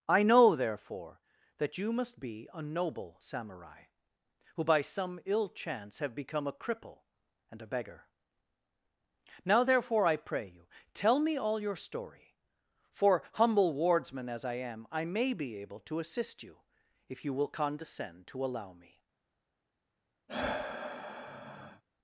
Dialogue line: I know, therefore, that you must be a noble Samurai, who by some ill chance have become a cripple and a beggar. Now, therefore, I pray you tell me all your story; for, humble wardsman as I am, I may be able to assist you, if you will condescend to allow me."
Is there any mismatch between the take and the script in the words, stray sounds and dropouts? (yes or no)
yes